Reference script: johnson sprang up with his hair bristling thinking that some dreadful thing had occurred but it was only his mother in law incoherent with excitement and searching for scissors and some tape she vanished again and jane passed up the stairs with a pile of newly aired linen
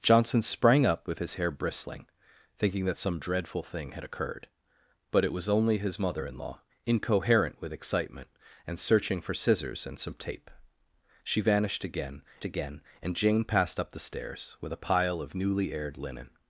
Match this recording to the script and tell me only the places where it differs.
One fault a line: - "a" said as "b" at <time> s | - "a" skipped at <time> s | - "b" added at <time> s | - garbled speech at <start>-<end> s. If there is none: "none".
- "again" added at 12.4 s